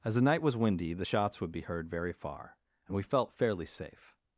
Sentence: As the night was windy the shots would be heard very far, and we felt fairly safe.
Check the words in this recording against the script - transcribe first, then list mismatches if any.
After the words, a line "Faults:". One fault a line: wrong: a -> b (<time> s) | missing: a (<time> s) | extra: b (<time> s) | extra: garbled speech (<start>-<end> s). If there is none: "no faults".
As the night was windy the shots would be heard very far, and we felt fairly safe.
Faults:
no faults